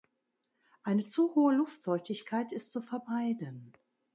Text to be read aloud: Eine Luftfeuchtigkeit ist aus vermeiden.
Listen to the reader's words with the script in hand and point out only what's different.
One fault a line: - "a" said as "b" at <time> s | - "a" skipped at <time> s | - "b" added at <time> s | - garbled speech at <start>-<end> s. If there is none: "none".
- "zu hohe" added at 1.1 s
- "aus" said as "zu" at 2.7 s